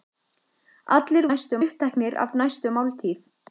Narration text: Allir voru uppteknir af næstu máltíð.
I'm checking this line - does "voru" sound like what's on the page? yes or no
no